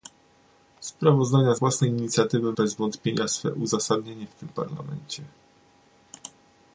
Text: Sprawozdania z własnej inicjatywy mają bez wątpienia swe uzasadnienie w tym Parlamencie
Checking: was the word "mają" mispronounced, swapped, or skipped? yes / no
yes